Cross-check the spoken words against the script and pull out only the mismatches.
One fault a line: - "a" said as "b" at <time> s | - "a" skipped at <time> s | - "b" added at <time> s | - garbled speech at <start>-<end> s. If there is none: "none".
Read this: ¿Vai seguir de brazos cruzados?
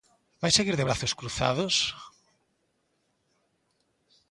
none